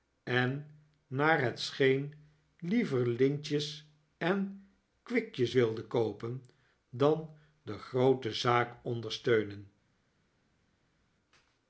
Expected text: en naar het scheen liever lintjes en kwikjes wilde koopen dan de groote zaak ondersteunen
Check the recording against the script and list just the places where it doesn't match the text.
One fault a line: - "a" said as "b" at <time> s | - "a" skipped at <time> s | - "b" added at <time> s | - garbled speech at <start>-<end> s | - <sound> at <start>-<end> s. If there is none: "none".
none